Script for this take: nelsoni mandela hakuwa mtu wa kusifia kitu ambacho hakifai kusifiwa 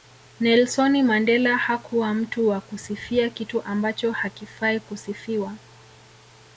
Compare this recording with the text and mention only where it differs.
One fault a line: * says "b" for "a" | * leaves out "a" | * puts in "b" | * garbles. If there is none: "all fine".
all fine